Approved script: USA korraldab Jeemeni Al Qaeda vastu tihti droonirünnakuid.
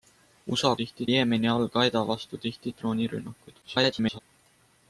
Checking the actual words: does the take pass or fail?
fail